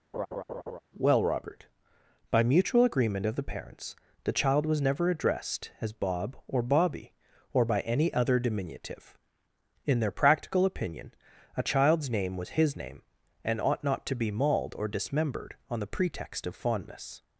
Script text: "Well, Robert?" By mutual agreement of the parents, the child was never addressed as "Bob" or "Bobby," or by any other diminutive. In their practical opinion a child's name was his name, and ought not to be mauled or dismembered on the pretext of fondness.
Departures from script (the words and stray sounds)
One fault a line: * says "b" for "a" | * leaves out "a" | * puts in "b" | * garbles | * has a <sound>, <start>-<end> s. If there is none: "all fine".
* has a laugh, 0.1-0.8 s